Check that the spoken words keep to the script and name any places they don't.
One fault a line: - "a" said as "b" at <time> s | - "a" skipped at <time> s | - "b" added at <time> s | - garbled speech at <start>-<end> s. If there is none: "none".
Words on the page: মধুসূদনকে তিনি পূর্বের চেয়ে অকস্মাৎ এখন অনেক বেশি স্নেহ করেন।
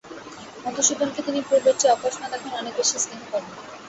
none